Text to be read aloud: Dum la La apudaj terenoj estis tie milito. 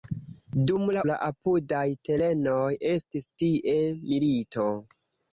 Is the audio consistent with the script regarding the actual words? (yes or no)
yes